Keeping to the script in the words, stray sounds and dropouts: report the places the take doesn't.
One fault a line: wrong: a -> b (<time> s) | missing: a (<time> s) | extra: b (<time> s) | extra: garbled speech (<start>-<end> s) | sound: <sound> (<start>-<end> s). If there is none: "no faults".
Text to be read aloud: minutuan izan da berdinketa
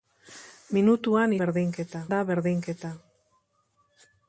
wrong: izan -> berdinketa (1.4 s)